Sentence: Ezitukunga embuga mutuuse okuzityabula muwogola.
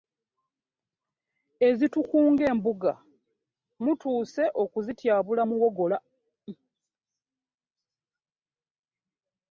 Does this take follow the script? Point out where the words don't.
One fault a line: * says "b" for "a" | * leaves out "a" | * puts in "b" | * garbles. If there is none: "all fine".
all fine